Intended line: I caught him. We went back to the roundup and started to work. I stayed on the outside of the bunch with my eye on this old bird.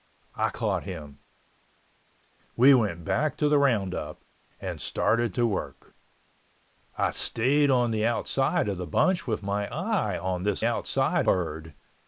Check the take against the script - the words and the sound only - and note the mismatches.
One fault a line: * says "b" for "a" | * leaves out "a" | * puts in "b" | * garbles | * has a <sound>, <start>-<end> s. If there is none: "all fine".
* says "outside" for "old"